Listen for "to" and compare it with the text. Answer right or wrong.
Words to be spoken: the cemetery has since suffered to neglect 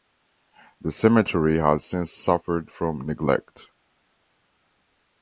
wrong